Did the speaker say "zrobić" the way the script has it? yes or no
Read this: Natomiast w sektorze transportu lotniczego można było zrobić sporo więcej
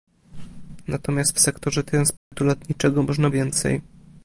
no